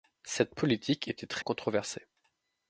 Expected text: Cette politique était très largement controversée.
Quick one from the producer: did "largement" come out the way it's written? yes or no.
no